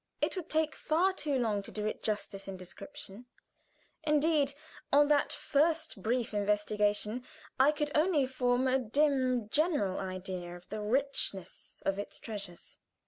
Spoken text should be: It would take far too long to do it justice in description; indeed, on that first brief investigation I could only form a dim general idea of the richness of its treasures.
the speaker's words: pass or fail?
pass